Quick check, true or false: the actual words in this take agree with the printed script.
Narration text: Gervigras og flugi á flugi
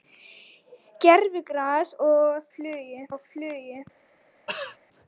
true